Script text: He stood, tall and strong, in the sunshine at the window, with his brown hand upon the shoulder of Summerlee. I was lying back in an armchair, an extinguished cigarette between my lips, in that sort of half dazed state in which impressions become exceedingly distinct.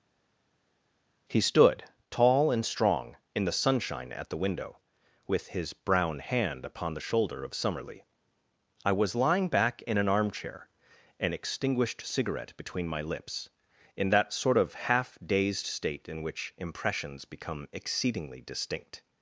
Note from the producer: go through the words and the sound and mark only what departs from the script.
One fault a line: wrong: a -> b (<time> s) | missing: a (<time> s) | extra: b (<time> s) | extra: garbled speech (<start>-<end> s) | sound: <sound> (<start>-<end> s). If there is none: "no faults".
no faults